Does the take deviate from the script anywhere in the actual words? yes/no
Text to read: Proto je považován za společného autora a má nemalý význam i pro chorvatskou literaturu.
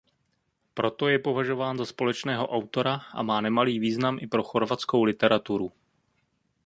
no